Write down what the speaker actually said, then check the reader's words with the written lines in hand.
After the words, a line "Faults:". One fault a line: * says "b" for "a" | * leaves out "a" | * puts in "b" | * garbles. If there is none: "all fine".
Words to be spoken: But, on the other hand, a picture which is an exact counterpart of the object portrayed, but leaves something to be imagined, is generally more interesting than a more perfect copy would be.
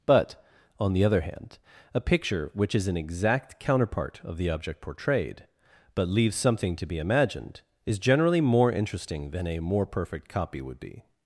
But, on the other hand, a picture which is an exact counterpart of the object portrayed, but leaves something to be imagined, is generally more interesting than a more perfect copy would be.
Faults:
all fine